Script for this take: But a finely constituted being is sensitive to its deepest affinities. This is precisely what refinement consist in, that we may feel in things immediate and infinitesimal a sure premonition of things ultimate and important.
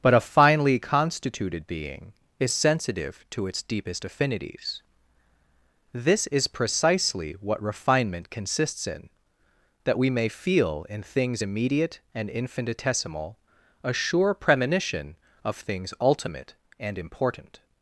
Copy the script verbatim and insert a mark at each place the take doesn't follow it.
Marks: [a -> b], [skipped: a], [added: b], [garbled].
But a finely constituted being is sensitive to its deepest affinities. This is precisely what refinement [consist -> consists] in, that we may feel in things immediate and infinitesimal a sure premonition of things ultimate and important.